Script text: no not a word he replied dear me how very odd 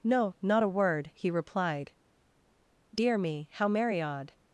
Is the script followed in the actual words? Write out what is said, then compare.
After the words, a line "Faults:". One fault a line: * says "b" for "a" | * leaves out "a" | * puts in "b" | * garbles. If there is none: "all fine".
no not a word he replied dear me how merry odd
Faults:
* says "merry" for "very"